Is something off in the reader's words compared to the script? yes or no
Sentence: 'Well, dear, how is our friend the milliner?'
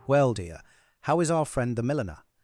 no